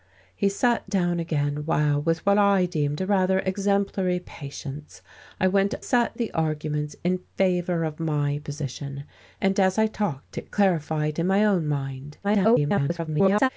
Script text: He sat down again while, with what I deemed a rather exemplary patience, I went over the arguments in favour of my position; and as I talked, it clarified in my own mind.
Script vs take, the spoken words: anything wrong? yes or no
yes